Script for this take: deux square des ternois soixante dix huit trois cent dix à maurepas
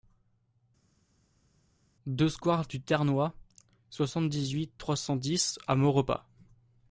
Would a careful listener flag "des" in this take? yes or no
yes